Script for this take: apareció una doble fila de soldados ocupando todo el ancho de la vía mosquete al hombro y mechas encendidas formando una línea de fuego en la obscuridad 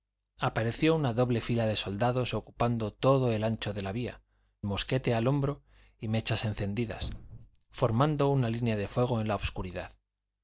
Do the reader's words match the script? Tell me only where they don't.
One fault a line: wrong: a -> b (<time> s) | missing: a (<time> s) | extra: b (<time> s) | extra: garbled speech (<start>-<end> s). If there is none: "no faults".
no faults